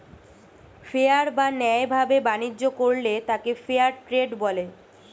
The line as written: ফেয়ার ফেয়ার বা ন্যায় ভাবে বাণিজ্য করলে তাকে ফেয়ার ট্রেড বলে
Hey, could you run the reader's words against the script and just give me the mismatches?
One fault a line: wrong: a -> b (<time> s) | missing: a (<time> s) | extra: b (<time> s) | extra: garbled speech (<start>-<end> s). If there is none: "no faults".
missing: ফেয়ার (1.3 s)